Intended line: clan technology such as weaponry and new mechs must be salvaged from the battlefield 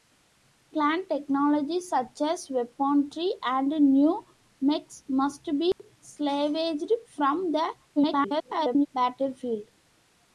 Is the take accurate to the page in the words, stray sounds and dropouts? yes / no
no